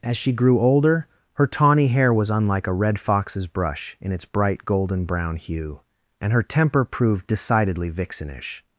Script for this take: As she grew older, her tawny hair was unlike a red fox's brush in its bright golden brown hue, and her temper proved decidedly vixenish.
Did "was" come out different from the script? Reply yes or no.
no